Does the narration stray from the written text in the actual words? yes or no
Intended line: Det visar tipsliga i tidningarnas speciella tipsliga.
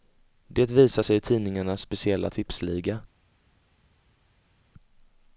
yes